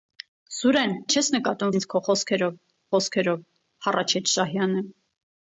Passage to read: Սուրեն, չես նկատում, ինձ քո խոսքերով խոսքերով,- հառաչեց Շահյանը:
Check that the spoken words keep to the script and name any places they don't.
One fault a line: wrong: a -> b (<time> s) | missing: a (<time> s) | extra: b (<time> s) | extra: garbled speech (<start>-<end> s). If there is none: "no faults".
no faults